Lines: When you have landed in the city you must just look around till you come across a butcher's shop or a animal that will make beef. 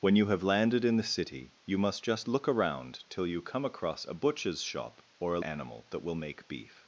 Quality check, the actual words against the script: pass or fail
pass